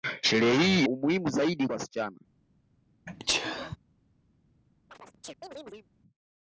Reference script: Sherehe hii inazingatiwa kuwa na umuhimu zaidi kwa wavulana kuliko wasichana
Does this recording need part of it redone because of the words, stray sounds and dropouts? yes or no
yes